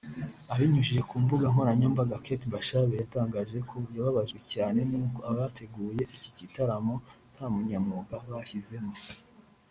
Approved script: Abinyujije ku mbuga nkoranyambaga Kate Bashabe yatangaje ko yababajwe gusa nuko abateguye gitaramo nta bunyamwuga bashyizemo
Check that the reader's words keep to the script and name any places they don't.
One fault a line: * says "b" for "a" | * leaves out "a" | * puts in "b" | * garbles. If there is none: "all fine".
* says "cyane" for "gusa"
* puts in "iki"